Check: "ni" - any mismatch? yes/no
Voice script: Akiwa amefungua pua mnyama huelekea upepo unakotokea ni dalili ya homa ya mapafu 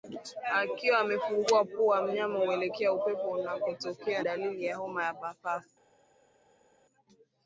yes